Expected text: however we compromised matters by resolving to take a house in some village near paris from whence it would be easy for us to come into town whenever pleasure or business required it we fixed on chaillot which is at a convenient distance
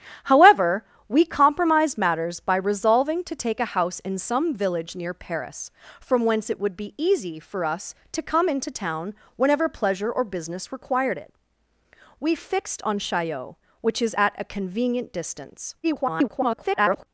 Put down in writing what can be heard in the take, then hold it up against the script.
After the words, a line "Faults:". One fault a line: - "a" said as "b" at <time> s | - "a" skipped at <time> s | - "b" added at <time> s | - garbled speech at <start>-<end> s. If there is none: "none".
however we compromised matters by resolving to take a house in some village near paris from whence it would be easy for us to come into town whenever pleasure or business required it we fixed on chaillot which is at a convenient distance [garbled]
Faults:
- garbled speech at 15.8-17.1 s